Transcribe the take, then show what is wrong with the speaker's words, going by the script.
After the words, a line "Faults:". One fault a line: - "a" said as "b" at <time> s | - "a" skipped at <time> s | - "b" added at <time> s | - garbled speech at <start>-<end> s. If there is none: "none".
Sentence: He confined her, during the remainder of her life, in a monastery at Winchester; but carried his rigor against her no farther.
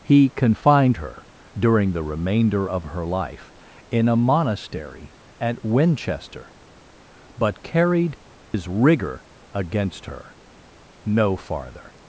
He confined her, during the remainder of her life, in a monastery at Winchester; but carried his rigor against her no farther.
Faults:
none